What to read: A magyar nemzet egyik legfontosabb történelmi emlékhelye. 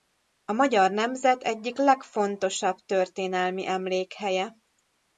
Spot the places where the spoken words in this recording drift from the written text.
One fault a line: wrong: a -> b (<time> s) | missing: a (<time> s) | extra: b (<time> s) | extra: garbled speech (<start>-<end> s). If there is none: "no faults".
no faults